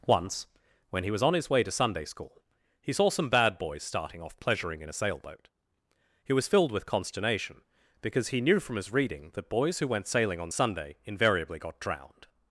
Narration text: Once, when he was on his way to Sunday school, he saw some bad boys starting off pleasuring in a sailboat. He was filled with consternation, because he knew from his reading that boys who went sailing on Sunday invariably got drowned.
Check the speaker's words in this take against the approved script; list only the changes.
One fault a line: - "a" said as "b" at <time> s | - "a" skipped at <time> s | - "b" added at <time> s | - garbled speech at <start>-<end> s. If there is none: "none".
none